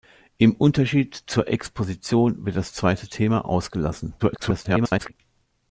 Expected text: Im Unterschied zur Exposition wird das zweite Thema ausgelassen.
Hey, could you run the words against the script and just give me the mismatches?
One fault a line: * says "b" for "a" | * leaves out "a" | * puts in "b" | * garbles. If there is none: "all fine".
* garbles